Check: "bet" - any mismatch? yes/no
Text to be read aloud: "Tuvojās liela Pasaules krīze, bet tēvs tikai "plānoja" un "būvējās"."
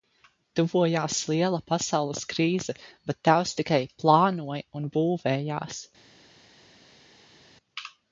no